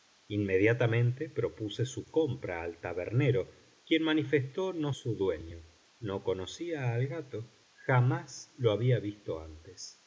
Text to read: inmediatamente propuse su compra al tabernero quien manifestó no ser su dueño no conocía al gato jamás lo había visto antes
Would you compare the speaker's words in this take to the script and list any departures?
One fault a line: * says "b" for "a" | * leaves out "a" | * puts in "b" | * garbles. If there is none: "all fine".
* leaves out "ser"